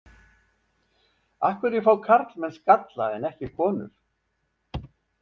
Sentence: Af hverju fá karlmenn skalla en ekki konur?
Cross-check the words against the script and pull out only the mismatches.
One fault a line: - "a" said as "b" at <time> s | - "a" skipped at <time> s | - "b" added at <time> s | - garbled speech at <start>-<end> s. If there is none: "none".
none